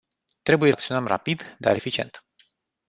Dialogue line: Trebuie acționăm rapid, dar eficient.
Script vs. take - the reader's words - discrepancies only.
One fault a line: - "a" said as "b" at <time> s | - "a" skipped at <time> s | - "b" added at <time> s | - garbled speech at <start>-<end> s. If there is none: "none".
none